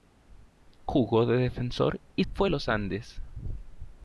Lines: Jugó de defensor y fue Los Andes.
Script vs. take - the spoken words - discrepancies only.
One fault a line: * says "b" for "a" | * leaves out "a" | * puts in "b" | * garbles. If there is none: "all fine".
all fine